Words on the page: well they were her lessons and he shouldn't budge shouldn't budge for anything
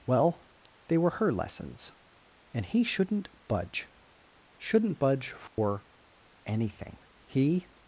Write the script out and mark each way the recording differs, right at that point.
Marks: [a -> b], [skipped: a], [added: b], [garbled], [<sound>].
well they were her lessons and he shouldn't budge shouldn't budge for [dropout] anything [added: he]